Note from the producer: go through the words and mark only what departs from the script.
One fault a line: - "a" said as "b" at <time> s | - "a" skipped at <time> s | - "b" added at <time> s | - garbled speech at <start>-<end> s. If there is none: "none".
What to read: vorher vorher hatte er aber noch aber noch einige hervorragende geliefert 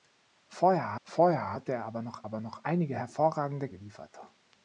none